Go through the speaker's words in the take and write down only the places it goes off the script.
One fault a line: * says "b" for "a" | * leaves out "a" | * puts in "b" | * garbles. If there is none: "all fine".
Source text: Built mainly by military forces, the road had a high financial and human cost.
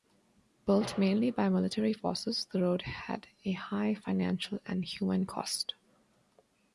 all fine